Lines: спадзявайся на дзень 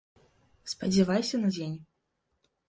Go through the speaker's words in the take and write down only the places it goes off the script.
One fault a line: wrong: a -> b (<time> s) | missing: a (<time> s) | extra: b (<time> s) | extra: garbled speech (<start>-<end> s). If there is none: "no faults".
no faults